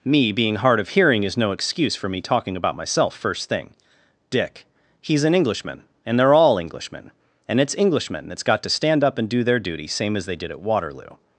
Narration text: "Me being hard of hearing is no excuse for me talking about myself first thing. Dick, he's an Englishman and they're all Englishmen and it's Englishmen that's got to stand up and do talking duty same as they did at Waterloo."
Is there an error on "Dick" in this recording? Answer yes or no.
no